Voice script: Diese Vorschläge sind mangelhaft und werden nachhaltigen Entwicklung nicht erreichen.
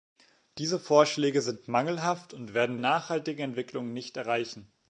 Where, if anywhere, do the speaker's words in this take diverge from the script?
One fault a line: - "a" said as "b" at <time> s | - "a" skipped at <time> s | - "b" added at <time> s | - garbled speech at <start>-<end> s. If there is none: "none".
none